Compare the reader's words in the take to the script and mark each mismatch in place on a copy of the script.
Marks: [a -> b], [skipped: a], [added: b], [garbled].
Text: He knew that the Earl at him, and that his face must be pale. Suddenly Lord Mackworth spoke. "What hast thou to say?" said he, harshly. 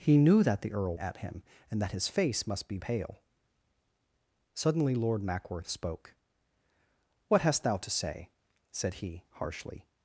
He knew that the Earl at him, and that his face must be pale. Suddenly Lord Mackworth spoke. "What hast thou to say?" said he, harshly.